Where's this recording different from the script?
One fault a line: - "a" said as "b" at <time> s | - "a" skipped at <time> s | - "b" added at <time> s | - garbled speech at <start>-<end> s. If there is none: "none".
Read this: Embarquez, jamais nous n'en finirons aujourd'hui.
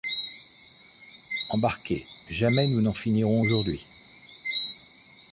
none